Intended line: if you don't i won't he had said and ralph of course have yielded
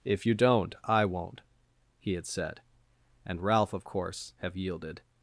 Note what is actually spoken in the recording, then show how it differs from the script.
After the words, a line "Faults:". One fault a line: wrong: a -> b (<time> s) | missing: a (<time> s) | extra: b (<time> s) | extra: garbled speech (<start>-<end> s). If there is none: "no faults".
if you don't i won't he had said and ralph of course have yielded
Faults:
no faults